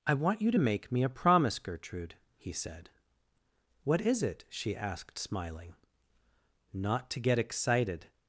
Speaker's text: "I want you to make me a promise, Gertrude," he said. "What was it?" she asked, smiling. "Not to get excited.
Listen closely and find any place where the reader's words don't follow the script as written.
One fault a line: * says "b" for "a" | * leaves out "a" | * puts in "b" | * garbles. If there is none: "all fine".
* says "is" for "was"